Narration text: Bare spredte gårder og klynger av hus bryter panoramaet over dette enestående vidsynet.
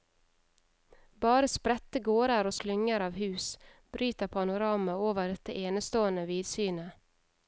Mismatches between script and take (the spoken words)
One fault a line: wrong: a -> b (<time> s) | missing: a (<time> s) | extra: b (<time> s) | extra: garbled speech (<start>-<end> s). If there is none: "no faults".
no faults